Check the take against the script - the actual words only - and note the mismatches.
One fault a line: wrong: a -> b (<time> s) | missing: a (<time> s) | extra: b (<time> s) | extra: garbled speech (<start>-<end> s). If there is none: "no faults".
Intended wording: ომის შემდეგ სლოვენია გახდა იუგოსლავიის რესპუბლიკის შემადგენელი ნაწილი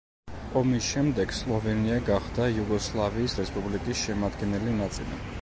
no faults